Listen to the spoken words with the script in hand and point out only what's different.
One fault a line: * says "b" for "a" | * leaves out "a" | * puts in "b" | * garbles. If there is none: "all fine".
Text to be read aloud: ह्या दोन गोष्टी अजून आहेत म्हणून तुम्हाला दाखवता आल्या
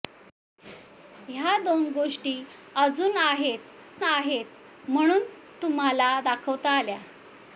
* puts in "आहेत"